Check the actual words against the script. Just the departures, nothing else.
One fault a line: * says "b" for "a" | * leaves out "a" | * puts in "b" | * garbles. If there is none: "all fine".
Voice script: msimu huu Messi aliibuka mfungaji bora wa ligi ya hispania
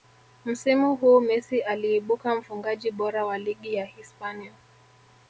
all fine